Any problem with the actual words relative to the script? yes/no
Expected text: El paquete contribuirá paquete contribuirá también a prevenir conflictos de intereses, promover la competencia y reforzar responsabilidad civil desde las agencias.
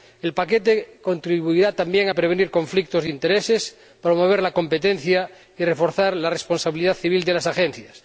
yes